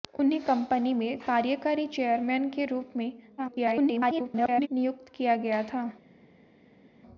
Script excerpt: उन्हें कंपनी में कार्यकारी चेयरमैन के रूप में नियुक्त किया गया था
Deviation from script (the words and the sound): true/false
true